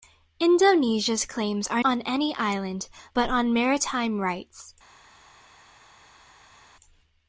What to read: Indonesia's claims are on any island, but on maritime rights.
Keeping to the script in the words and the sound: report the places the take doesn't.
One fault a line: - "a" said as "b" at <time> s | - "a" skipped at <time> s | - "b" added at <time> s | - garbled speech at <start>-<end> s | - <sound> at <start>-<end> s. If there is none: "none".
none